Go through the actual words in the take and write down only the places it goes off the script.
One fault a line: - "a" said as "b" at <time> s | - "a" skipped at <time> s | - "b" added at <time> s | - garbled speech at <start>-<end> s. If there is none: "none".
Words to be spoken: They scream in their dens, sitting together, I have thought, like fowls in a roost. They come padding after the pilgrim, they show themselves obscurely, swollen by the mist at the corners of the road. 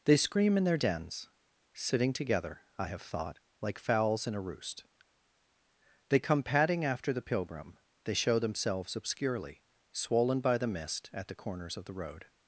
none